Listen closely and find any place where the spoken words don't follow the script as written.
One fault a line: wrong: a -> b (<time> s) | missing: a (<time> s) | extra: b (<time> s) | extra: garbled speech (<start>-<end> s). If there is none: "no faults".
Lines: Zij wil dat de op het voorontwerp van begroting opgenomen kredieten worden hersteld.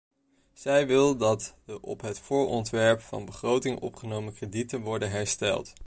no faults